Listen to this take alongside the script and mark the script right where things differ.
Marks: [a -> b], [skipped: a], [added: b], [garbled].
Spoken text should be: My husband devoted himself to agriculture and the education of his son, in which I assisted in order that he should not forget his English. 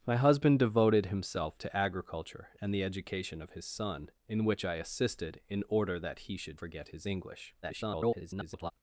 My husband devoted himself to agriculture and the education of his son, in which I assisted in order that he should [skipped: not] forget his English. [garbled]